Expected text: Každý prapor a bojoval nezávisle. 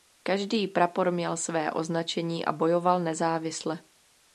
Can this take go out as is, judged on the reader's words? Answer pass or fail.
fail